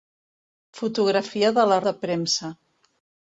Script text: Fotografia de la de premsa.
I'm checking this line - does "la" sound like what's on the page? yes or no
yes